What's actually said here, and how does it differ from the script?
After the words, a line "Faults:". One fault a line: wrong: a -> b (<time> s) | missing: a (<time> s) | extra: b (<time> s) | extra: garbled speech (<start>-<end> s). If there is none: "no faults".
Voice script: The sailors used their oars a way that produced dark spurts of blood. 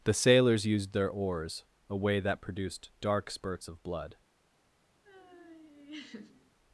The sailors used their oars a way that produced dark spurts of blood.
Faults:
no faults